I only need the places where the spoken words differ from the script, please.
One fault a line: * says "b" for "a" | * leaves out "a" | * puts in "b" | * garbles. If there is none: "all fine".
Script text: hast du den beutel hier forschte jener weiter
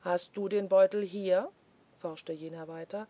all fine